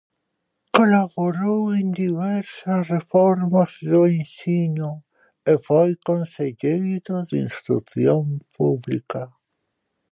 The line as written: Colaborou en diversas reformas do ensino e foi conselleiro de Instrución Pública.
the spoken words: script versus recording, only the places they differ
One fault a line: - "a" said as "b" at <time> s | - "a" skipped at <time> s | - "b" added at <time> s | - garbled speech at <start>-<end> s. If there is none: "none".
none